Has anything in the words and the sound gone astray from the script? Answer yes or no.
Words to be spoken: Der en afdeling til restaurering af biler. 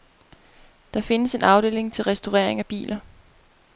yes